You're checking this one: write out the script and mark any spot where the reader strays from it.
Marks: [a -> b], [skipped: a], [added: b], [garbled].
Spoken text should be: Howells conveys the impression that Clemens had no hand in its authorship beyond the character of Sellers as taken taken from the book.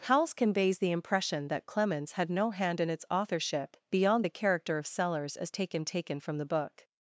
Howells conveys the impression that Clemens had no hand in its authorship beyond the character of Sellers as taken taken from the book.